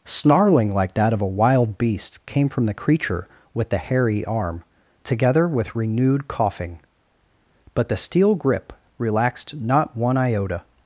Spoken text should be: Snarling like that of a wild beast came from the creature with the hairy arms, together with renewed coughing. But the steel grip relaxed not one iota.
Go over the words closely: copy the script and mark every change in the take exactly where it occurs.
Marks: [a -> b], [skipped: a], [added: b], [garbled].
Snarling like that of a wild beast came from the creature with the hairy [arms, -> arm] together with renewed coughing. But the steel grip relaxed not one iota.